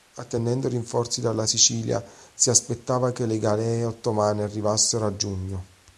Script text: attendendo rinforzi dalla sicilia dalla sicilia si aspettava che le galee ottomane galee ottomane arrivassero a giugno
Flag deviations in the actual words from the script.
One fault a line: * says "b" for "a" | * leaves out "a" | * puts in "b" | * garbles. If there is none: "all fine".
* leaves out "dalla sicilia"
* leaves out "galee ottomane"